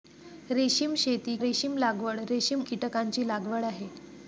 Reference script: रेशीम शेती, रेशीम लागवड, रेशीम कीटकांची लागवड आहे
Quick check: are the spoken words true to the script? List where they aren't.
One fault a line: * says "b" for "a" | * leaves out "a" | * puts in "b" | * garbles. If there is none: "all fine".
all fine